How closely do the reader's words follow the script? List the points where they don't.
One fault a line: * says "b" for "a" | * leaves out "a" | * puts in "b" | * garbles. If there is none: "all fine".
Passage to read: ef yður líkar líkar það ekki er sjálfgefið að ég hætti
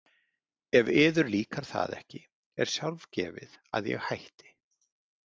* leaves out "líkar"